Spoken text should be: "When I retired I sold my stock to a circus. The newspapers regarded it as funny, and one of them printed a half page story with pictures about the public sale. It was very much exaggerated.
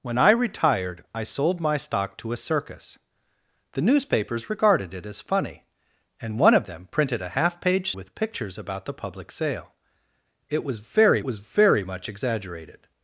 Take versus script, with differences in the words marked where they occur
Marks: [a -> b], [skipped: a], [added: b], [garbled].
"When I retired I sold my stock to a circus. The newspapers regarded it as funny, and one of them printed a half page [skipped: story] with pictures about the public sale. It was very [added: was very] much exaggerated.